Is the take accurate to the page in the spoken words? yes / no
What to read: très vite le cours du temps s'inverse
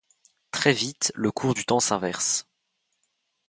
yes